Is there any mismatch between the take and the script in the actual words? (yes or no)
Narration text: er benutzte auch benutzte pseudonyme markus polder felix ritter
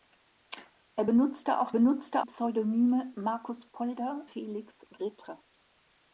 no